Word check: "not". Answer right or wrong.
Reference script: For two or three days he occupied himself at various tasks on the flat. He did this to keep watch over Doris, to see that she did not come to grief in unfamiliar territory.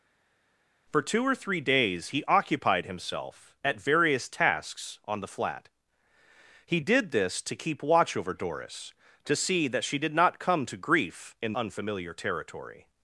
right